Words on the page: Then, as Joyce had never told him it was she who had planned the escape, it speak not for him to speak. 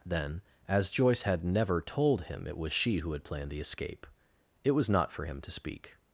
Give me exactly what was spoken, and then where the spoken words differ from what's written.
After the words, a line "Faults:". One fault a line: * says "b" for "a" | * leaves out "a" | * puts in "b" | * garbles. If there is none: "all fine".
Then, as Joyce had never told him it was she who had planned the escape, it was not for him to speak.
Faults:
* says "was" for "speak"